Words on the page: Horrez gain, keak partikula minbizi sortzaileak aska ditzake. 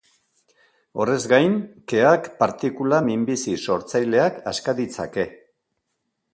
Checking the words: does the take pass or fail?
pass